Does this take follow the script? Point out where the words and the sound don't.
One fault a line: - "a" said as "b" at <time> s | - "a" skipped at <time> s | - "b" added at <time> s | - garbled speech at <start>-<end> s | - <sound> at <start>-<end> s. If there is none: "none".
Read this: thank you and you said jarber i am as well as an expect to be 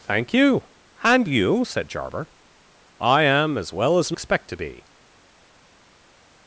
none